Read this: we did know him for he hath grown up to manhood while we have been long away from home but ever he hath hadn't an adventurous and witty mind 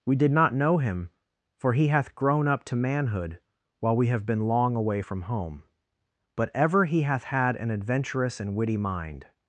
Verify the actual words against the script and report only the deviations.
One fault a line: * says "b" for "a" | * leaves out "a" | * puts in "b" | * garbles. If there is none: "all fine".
* puts in "not"
* says "had" for "hadn't"